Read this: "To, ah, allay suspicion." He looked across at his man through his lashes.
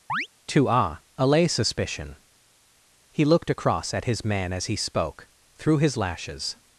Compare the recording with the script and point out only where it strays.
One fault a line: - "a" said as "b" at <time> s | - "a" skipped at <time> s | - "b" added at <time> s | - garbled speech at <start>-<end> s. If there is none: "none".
- "as he spoke" added at 4.5 s